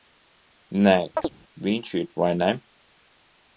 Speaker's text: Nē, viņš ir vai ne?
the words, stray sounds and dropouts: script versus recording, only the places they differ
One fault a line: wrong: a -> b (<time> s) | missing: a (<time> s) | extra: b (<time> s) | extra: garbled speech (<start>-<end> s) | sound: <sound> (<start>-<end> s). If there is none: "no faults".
sound: chirp (1.2-1.3 s)